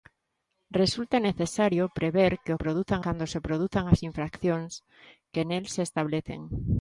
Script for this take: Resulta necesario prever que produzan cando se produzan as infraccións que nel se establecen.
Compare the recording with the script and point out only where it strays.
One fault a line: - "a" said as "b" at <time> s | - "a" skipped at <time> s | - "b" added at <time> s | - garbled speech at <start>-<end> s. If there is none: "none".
none